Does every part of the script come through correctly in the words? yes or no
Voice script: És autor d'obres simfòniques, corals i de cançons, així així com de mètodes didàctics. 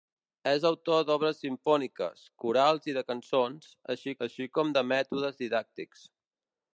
yes